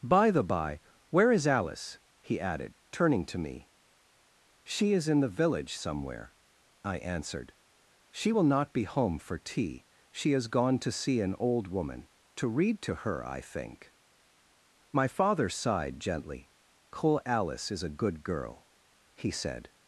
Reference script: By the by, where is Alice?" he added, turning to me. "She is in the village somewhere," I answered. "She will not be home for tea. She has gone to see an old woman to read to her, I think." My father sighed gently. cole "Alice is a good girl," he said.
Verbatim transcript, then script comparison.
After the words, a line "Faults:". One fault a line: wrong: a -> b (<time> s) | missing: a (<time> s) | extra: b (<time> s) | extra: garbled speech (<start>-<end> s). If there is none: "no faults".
By the by, where is Alice?" he added, turning to me. "She is in the village somewhere," I answered. "She will not be home for tea. She has gone to see an old woman to read to her, I think." My father sighed gently. cole "Alice is a good girl," he said.
Faults:
no faults